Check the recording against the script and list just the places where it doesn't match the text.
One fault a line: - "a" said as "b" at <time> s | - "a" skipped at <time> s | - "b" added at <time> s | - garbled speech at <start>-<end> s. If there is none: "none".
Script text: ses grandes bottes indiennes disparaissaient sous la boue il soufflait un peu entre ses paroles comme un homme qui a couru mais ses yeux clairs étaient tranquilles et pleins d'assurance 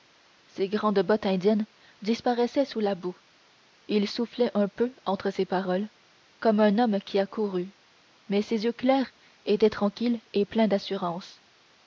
none